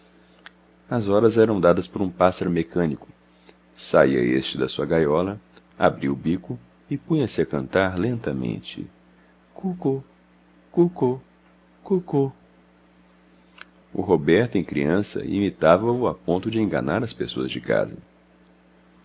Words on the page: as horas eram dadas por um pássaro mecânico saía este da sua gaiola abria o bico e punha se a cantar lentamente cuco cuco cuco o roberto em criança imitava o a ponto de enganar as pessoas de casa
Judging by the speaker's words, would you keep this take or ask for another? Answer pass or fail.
pass